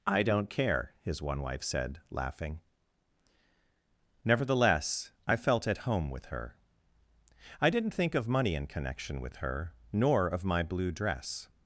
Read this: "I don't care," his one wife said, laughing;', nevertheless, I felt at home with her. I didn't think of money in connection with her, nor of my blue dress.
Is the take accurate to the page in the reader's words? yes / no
yes